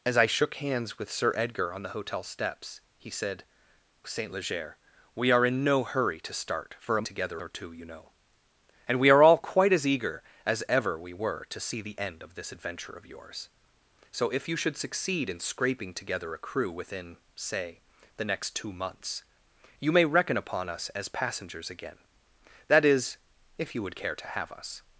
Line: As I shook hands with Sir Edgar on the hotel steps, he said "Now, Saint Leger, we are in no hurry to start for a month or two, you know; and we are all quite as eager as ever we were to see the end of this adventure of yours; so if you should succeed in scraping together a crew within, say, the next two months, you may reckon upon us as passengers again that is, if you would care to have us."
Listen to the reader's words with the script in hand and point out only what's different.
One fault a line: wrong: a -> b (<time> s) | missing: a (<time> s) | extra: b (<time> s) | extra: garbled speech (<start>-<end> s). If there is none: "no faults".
missing: Now (3.4 s)
wrong: month -> together (7.0 s)